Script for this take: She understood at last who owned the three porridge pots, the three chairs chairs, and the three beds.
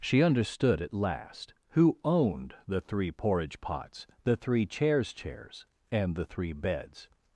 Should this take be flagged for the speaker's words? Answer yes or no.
no